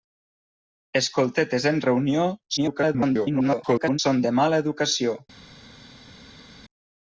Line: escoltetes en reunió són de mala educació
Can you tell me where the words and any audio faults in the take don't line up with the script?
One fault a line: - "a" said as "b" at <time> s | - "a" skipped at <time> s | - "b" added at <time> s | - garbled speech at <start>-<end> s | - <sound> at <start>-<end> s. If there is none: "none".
- garbled speech at 2.6-4.0 s